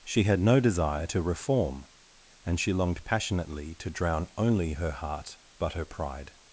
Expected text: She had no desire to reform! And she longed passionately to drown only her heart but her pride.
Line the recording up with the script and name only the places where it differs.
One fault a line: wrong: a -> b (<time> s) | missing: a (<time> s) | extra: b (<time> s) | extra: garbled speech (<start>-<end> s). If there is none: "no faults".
no faults